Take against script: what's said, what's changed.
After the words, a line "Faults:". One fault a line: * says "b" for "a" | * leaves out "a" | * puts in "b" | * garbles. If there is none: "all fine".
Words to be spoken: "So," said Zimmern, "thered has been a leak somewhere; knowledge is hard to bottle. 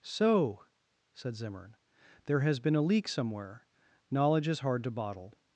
"So," said Zimmern, "there has been a leak somewhere; knowledge is hard to bottle.
Faults:
* says "there" for "thered"